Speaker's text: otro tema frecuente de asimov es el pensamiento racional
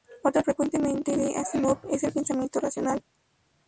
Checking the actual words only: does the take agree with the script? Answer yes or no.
no